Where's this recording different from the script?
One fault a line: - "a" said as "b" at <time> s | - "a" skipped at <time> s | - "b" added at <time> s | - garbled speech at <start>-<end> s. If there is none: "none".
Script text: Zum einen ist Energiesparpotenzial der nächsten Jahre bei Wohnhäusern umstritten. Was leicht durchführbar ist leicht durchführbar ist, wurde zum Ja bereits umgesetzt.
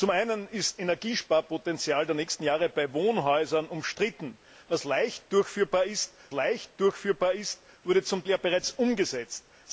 none